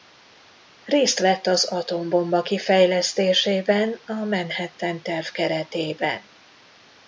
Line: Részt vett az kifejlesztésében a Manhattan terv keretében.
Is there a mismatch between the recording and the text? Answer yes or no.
yes